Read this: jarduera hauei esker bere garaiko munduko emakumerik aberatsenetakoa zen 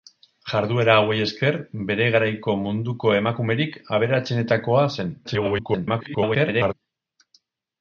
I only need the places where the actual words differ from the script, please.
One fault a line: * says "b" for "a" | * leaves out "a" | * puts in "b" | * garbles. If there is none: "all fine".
* garbles